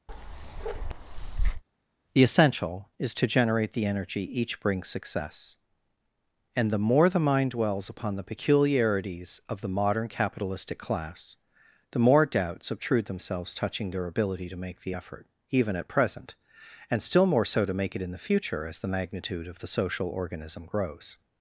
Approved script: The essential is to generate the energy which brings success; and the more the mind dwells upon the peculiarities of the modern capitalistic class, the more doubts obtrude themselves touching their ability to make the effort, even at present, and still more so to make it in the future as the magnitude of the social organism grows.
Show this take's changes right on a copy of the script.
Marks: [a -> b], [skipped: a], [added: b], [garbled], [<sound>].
[bark] The essential is to generate the energy [which -> each] brings success; and the more the mind dwells upon the peculiarities of the modern capitalistic class, the more doubts obtrude themselves touching their ability to make the effort, even at present, and still more so to make it in the future as the magnitude of the social organism grows.